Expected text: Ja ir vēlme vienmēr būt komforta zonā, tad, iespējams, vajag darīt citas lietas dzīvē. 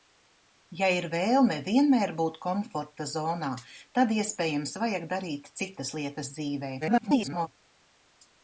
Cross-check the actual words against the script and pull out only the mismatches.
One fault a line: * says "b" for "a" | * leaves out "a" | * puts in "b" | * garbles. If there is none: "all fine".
* garbles